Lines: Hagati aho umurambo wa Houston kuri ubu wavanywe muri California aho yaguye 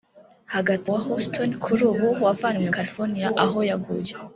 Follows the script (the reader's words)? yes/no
no